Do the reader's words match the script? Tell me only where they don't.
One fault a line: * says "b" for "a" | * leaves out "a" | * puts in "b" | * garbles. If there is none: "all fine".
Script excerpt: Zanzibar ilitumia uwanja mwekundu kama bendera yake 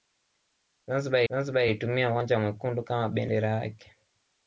* puts in "zanzibar"